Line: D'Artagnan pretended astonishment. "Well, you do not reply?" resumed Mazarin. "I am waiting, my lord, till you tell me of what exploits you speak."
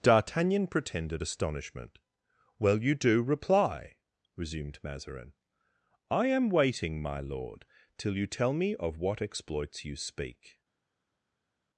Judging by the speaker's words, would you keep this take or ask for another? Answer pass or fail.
fail